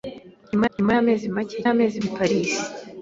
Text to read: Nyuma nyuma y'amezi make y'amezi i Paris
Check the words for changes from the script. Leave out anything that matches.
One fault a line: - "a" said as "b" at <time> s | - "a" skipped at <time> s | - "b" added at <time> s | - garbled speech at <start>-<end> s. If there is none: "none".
none